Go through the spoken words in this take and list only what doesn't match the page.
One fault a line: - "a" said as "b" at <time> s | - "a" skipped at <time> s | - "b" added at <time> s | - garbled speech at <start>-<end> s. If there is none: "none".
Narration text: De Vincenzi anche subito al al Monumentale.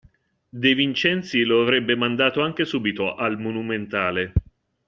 - "lo avrebbe mandato" added at 1.4 s
- "al" skipped at 3.4 s